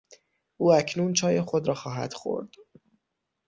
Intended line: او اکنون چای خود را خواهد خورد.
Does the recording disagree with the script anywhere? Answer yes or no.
no